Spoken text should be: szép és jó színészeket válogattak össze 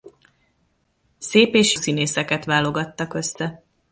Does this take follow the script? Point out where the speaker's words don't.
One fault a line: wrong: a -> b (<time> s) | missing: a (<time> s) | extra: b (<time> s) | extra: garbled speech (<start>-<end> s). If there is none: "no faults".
missing: jó (1.8 s)